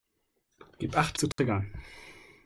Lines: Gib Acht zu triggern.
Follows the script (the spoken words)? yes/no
yes